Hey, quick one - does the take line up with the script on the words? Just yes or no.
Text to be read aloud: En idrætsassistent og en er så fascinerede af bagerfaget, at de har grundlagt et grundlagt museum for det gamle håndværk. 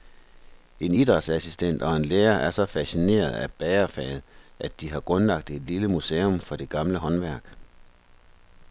no